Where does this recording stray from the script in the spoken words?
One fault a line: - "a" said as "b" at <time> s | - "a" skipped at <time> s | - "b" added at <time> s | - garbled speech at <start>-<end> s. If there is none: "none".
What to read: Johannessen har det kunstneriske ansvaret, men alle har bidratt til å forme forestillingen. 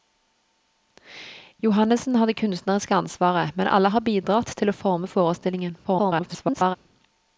- garbled speech at 5.8-6.8 s